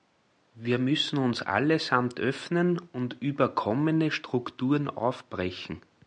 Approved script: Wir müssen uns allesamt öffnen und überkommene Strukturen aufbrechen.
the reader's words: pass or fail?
pass